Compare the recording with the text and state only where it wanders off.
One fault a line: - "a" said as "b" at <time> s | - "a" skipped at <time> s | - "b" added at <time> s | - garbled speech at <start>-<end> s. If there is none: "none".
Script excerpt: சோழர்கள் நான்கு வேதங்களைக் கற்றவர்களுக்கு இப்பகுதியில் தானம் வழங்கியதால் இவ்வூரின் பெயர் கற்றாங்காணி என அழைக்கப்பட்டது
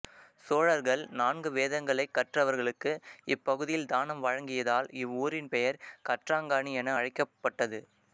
none